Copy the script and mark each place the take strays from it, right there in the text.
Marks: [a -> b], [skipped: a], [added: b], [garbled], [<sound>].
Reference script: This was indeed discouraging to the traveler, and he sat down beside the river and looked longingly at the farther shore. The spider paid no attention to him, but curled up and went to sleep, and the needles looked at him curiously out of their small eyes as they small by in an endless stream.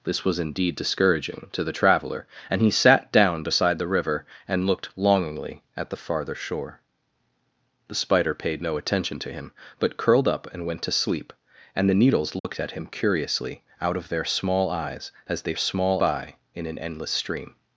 This was indeed discouraging to the traveler, and he sat down beside the river and looked longingly at the farther shore. The spider paid no attention to him, but curled up and went to sleep, and the needles looked [dropout] at him curiously out of their small eyes as they small by in an endless stream.